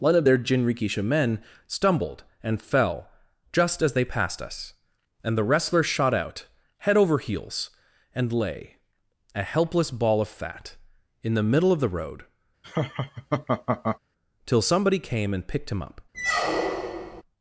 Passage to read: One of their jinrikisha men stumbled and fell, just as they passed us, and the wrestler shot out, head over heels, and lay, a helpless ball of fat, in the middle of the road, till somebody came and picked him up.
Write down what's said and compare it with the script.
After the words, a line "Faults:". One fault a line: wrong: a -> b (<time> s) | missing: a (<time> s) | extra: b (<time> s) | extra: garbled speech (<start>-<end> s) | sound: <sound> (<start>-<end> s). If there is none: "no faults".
One of their jinrikisha men stumbled and fell, just as they passed us, and the wrestler shot out, head over heels, and lay, a helpless ball of fat, in the middle of the road, till somebody came and picked him up.
Faults:
sound: laugh (12.6-14.0 s)
sound: squeak (16.1-17.2 s)